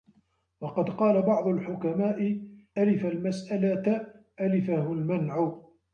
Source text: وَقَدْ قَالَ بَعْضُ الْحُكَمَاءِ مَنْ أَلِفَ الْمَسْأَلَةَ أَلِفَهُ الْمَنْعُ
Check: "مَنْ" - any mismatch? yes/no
yes